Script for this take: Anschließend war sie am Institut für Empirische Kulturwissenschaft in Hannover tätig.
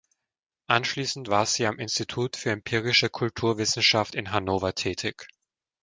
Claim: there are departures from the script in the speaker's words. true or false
false